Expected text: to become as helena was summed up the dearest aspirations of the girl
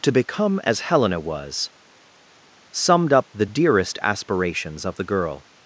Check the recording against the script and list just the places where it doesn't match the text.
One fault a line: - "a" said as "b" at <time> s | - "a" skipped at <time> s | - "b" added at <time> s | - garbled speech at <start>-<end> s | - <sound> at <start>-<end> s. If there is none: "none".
none